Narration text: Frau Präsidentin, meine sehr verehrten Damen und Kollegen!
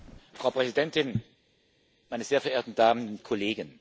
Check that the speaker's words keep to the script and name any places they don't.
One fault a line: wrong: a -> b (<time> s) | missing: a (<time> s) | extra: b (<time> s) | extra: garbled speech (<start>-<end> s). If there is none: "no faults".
no faults